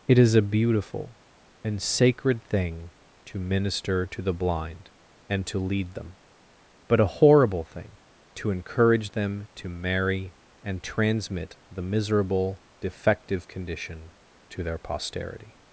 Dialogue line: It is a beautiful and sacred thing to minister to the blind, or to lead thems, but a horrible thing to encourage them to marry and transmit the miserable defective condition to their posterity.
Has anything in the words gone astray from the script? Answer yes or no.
yes